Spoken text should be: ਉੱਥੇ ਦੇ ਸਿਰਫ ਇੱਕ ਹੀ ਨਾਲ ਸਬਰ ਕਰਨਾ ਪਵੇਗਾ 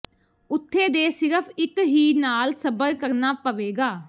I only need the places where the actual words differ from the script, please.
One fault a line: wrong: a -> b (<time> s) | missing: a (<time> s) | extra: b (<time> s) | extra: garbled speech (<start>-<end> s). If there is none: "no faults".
no faults